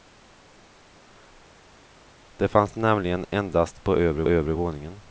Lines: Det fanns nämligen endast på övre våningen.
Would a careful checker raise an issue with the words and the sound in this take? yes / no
yes